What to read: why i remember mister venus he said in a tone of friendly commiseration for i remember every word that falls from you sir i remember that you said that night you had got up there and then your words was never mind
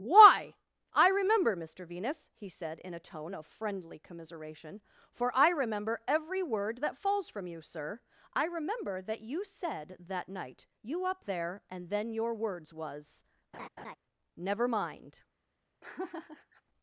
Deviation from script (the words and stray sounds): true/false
true